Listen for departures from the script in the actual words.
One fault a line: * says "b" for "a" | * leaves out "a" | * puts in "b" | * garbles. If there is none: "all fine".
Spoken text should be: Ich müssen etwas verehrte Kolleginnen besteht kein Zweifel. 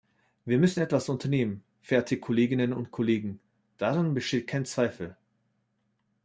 * says "Wir" for "Ich"
* puts in "unternehmen"
* puts in "und Kollegen daran"